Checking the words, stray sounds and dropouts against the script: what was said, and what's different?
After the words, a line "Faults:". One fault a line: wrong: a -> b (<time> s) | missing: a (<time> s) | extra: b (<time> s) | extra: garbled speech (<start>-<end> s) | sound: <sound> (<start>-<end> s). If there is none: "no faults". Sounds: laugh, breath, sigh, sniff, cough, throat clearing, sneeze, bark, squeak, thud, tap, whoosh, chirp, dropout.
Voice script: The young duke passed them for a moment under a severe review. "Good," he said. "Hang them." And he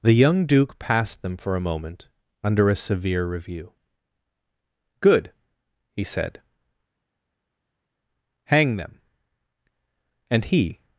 The young duke passed them for a moment under a severe review. "Good," he said. "Hang them." And he
Faults:
no faults